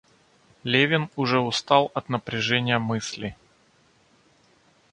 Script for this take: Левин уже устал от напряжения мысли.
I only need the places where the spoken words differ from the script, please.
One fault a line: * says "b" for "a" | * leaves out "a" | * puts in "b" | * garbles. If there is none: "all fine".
all fine